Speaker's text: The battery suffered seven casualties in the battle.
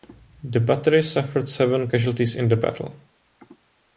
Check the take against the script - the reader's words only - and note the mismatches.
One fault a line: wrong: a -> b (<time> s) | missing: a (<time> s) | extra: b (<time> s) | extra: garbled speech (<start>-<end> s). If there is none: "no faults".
no faults